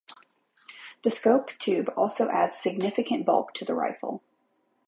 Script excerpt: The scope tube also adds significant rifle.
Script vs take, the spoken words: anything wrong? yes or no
yes